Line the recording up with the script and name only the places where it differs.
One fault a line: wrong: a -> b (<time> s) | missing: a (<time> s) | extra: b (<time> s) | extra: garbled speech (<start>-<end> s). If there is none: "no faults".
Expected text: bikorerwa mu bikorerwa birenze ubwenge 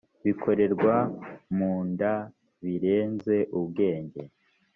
wrong: bikorerwa -> nda (1.9 s)